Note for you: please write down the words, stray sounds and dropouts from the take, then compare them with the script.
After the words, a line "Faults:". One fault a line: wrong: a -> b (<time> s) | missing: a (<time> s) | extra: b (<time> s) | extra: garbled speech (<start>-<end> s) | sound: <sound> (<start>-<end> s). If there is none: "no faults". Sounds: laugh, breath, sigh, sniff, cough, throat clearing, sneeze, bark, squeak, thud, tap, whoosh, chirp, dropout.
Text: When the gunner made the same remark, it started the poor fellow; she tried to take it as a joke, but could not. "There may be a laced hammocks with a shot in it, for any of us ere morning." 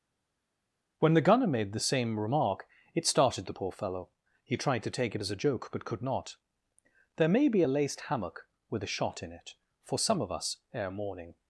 When the gunner made the same remark, it started the poor fellow; he tried to take it as a joke, but could not. "There may be a laced hammock with a shot in it, for some of us ere morning."
Faults:
wrong: she -> he (4.4 s)
wrong: hammocks -> hammock (8.1 s)
wrong: any -> some (10.0 s)